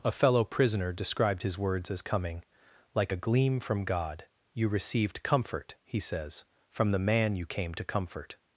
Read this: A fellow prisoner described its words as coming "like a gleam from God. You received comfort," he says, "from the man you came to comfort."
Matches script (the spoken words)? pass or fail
fail